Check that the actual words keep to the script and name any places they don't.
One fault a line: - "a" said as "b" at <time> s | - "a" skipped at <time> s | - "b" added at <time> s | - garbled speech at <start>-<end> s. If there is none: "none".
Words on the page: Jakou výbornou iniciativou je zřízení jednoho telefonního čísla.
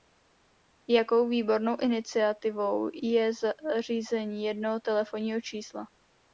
none